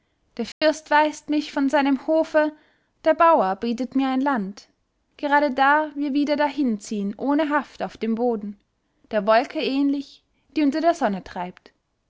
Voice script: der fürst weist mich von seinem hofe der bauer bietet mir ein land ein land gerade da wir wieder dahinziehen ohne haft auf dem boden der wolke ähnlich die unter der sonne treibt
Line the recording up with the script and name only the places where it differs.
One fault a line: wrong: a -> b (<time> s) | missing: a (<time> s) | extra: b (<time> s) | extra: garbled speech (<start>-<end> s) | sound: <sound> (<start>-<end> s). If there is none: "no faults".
sound: dropout (0.5-0.6 s)
missing: ein land (4.7 s)